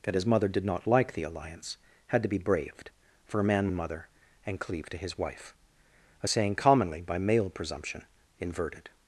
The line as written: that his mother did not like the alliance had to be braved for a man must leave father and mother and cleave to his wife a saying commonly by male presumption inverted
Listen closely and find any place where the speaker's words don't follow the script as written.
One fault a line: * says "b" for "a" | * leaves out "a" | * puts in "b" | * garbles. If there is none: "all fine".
* leaves out "must leave father"